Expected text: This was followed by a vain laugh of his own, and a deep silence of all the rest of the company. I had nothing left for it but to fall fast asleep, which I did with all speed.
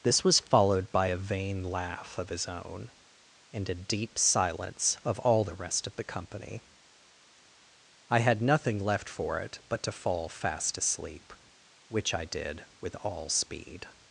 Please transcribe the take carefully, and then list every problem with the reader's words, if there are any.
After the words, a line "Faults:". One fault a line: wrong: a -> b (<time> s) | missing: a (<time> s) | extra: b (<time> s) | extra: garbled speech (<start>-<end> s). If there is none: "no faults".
This was followed by a vain laugh of his own, and a deep silence of all the rest of the company. I had nothing left for it but to fall fast asleep, which I did with all speed.
Faults:
no faults